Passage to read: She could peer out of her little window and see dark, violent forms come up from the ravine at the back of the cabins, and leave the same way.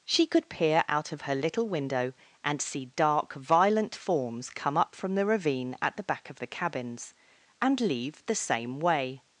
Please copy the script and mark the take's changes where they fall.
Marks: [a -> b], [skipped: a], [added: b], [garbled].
She could peer out of her little window and see dark, violent forms come up from the ravine at the back of the cabins, and leave the same way.